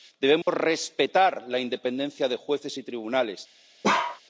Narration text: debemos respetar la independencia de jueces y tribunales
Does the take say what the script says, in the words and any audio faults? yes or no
no